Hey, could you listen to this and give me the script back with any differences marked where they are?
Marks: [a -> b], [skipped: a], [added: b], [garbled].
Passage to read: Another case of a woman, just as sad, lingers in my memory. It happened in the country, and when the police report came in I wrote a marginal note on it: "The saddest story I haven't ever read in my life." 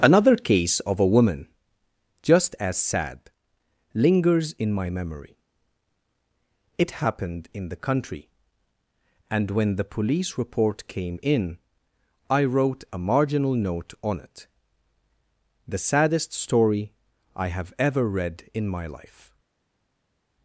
Another case of a woman, just as sad, lingers in my memory. It happened in the country, and when the police report came in I wrote a marginal note on it: "The saddest story I [haven't -> have] ever read in my life."